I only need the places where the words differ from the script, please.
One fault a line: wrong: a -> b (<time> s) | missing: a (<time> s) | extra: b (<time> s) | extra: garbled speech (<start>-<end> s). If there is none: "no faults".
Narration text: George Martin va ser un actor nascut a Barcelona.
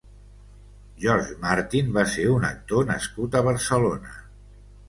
no faults